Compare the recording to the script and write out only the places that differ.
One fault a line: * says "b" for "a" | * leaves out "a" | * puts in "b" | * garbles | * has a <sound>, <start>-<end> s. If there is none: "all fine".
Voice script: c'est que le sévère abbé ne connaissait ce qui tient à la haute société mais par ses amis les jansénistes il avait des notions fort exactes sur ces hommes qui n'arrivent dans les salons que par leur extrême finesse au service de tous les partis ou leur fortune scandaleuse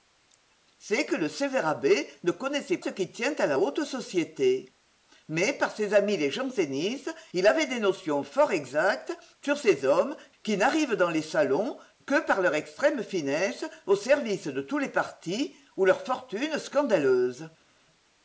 all fine